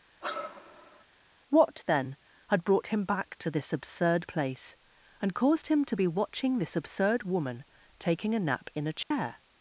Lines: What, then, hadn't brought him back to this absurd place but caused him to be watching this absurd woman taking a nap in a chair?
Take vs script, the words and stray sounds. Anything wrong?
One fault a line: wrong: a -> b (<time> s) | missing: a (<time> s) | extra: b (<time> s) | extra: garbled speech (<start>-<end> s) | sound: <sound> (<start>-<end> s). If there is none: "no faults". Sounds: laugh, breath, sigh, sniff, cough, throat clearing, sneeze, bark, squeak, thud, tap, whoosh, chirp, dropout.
sound: sigh (0.2-1.0 s)
wrong: hadn't -> had (2.5 s)
wrong: but -> and (5.2 s)
sound: dropout (9.0-9.1 s)